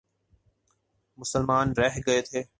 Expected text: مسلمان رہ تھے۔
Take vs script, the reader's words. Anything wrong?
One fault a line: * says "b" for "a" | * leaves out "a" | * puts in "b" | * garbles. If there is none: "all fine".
* puts in "گئے"